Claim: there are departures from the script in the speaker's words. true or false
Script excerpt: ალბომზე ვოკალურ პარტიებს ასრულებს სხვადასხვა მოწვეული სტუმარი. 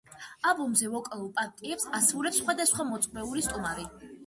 false